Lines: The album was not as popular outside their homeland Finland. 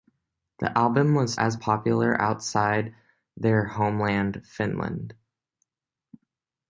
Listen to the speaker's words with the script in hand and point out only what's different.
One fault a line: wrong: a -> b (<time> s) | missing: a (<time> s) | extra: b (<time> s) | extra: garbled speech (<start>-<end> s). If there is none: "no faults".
missing: not (1.4 s)